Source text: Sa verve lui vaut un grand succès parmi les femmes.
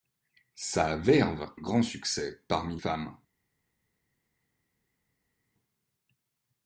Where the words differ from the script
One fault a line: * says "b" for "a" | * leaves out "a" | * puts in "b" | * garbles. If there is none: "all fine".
* leaves out "lui vaut un"
* leaves out "les"